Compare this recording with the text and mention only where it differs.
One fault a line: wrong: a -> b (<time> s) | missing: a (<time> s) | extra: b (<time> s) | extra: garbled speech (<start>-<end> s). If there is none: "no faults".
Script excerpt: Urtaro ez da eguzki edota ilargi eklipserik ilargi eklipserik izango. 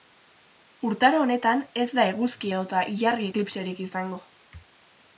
extra: honetan (1.2 s)
missing: ilargi eklipserik (3.8 s)